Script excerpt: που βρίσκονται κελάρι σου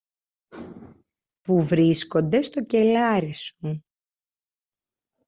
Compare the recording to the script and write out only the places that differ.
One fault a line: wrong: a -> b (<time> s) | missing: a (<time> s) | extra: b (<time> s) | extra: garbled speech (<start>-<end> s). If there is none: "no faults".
extra: στο (2.4 s)